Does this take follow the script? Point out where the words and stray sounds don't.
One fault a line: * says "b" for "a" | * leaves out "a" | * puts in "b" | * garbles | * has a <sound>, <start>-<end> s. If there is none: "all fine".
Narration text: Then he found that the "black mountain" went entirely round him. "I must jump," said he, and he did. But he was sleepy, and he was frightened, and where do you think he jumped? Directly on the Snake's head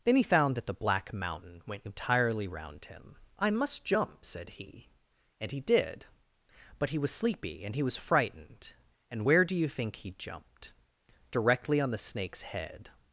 all fine